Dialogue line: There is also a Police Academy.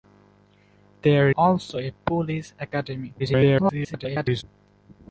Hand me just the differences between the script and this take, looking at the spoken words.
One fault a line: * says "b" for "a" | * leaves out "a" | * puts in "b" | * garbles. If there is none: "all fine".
* leaves out "is"
* garbles